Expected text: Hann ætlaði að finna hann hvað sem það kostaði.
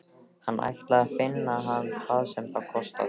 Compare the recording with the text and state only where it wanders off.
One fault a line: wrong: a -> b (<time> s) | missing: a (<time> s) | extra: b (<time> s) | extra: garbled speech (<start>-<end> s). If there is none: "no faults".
no faults